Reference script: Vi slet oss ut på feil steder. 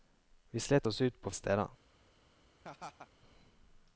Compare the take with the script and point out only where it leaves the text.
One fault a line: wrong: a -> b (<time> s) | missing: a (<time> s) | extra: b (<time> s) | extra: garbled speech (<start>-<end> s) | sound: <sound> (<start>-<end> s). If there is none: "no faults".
missing: feil (1.3 s)
sound: laugh (2.6-3.1 s)